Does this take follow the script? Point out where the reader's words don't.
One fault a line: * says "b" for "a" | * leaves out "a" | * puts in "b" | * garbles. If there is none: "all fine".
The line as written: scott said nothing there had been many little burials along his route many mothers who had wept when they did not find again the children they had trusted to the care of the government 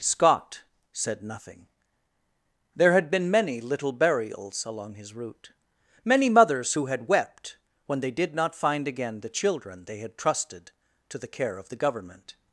all fine